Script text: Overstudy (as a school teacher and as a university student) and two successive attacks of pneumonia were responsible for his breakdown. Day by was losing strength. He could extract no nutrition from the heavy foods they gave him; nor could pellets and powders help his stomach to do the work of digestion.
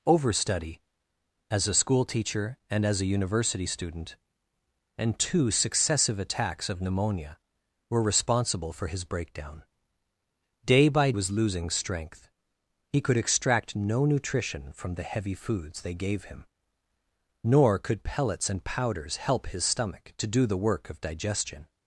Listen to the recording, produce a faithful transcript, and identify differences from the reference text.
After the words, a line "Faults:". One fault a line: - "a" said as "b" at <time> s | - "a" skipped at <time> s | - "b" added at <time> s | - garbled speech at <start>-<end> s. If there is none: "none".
Overstudy (as a school teacher and as a university student) and two successive attacks of pneumonia were responsible for his breakdown. Day by was losing strength. He could extract no nutrition from the heavy foods they gave him; nor could pellets and powders help his stomach to do the work of digestion.
Faults:
none